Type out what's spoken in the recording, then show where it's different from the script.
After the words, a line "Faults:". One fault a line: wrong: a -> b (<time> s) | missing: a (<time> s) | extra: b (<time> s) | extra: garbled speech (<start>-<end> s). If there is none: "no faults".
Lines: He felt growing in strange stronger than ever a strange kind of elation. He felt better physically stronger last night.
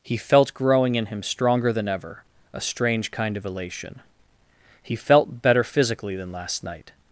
He felt growing in him stronger than ever a strange kind of elation. He felt better physically than last night.
Faults:
wrong: strange -> him (1.1 s)
wrong: stronger -> than (6.2 s)